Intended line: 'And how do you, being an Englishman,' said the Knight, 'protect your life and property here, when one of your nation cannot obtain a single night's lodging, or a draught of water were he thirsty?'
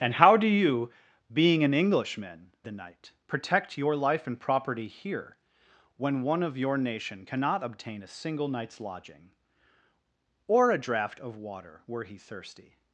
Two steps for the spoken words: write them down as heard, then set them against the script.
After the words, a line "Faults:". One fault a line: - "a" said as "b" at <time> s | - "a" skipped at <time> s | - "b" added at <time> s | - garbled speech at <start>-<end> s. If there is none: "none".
'And how do you, being an Englishman,' the Knight, 'protect your life and property here, when one of your nation cannot obtain a single night's lodging, or a draught of water were he thirsty?'
Faults:
- "said" skipped at 2.5 s